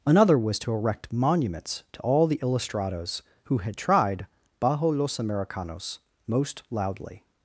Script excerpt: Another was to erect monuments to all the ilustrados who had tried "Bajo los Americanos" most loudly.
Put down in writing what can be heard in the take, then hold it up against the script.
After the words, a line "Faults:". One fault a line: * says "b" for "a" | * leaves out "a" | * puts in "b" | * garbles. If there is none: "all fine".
Another was to erect monuments to all the ilustrados who had tried "Bajo los Americanos" most loudly.
Faults:
all fine